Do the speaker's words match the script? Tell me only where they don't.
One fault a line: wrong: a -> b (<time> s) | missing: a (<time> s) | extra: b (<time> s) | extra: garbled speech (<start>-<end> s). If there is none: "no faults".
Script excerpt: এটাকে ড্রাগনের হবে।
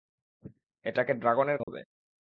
no faults